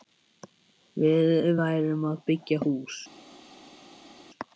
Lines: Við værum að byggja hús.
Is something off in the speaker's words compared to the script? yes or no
no